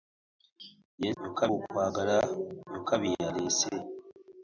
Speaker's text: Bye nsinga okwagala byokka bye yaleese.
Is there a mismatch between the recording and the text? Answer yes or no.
yes